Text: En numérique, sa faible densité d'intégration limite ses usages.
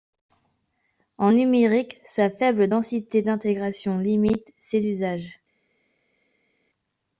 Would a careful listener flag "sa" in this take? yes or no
no